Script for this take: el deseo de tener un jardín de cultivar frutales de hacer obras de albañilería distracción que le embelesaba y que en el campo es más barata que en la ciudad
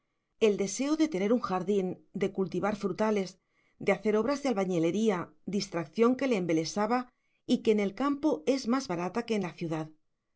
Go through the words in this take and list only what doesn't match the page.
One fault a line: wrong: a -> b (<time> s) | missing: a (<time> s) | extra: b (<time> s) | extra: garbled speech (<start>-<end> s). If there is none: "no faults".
no faults